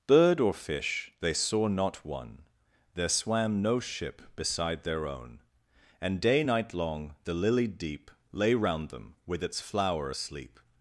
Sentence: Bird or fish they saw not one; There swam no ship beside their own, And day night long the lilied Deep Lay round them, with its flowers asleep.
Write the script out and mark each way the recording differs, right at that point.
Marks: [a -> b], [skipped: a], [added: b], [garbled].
Bird or fish they saw not one; There swam no ship beside their own, And day night long the lilied Deep Lay round them, with its [flowers -> flower] asleep.